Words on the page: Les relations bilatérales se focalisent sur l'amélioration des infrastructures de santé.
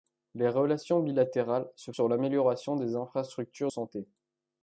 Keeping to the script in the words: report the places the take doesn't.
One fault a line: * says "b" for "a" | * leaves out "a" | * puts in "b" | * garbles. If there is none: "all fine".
* leaves out "focalisent"
* leaves out "de"